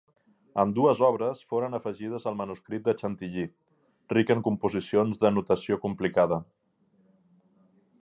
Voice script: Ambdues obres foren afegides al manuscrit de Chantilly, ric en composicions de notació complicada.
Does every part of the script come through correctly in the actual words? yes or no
yes